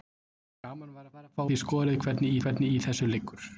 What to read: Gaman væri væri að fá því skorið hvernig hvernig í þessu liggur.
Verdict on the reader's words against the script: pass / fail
pass